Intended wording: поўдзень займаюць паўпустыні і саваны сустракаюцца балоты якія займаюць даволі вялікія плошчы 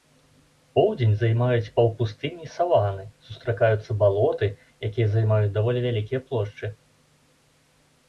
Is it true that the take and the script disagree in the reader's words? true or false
false